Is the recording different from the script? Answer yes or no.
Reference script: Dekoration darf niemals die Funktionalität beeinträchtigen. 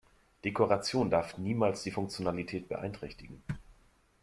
no